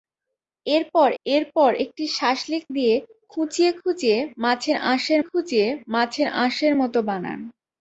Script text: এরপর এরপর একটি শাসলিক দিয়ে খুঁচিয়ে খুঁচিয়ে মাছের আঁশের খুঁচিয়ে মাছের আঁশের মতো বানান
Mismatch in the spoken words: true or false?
false